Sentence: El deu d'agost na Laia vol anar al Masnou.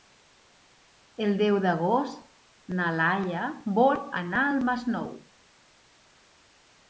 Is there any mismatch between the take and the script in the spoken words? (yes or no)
no